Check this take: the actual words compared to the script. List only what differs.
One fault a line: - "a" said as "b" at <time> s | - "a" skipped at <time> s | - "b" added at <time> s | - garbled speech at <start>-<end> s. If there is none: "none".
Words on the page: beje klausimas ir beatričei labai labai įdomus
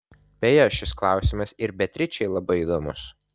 - "šis" added at 0.8 s
- "labai" skipped at 2.6 s